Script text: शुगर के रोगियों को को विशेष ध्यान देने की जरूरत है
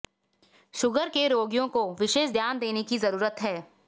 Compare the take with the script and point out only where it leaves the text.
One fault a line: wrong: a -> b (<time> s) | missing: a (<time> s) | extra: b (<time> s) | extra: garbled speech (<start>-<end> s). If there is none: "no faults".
missing: को (1.8 s)